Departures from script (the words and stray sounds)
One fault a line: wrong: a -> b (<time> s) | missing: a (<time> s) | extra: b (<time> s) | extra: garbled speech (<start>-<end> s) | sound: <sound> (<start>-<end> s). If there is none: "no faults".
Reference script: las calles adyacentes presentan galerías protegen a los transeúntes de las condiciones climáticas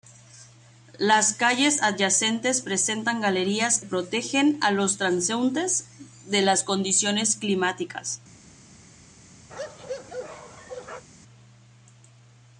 sound: bark (9.5-11.0 s)